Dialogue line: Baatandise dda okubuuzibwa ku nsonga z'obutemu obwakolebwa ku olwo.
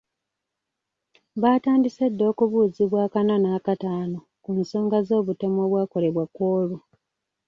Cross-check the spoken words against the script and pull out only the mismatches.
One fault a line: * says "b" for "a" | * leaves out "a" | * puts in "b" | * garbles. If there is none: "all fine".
* puts in "ak'ana n'ak'ataano"